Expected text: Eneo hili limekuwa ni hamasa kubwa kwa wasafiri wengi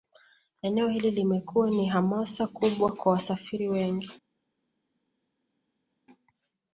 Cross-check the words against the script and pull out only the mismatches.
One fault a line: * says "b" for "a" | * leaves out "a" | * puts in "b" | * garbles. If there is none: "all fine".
all fine